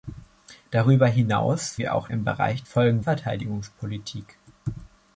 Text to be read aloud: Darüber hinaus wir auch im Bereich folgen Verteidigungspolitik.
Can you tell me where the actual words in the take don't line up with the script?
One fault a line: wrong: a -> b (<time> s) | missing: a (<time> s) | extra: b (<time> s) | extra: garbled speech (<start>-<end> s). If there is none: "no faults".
no faults